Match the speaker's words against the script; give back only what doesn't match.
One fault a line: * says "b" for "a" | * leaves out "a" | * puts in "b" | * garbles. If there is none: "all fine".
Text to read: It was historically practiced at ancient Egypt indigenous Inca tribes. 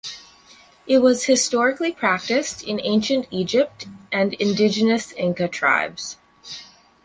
* says "in" for "at"
* puts in "and"